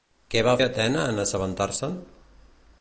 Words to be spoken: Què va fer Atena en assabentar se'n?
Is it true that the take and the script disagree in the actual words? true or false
true